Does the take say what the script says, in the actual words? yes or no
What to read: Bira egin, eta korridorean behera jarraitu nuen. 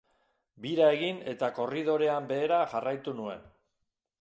yes